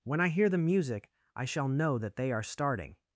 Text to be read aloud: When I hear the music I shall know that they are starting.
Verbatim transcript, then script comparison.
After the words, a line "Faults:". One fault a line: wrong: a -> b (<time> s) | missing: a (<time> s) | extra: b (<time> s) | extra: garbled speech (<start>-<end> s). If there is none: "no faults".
When I hear the music I shall know that they are starting.
Faults:
no faults